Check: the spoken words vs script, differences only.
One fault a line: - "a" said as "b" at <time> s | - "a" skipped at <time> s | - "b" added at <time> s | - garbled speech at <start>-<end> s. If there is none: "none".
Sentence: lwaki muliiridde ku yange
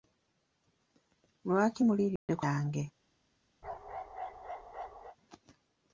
none